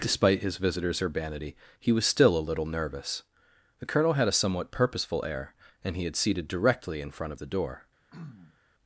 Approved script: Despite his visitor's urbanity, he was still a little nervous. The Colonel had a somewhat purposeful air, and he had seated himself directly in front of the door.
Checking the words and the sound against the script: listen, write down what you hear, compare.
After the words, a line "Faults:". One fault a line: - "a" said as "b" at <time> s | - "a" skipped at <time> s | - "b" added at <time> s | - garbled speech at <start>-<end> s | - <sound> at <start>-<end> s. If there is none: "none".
Despite his visitor's urbanity, he was still a little nervous. The Colonel had a somewhat purposeful air, and he had seated directly in front of the door.
Faults:
- "himself" skipped at 6.5 s
- throat clearing at 8.1-8.6 s